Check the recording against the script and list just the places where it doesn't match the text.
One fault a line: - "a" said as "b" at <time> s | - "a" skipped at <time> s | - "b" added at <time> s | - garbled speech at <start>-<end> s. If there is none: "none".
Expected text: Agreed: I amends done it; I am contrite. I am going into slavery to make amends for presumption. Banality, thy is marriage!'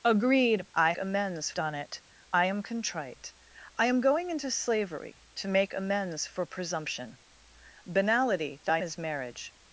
none